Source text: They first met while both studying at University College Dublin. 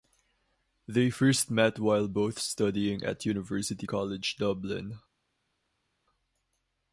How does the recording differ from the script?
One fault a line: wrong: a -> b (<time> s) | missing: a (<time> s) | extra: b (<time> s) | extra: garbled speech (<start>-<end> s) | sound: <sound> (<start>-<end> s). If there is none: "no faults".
no faults